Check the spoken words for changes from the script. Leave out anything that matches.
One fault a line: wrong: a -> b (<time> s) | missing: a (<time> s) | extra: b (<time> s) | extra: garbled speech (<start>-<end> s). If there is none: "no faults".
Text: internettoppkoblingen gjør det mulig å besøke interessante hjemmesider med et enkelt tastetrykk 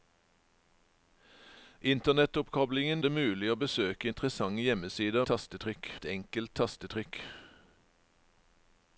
missing: gjør (3.0 s)
wrong: med -> tastetrykk (5.3 s)